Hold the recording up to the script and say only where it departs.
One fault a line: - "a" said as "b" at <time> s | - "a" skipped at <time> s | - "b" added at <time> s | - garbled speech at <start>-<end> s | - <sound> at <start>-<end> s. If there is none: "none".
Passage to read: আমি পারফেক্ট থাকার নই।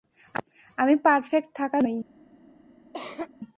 - cough at 2.9-3.3 s